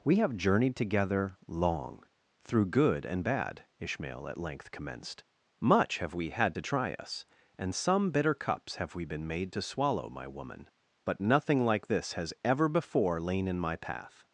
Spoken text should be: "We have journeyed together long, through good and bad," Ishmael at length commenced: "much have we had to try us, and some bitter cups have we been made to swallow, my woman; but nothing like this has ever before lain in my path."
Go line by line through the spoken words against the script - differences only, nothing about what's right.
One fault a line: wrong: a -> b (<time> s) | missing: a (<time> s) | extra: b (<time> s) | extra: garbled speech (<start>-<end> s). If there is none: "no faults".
no faults